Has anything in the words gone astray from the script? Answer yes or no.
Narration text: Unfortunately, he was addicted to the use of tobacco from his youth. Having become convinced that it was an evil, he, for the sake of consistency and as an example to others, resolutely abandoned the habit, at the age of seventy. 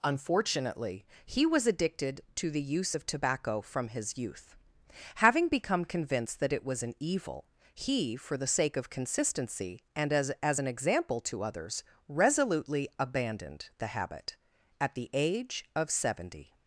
yes